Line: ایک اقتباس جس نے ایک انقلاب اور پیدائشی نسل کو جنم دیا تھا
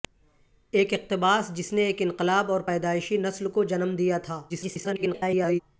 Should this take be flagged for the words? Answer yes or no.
yes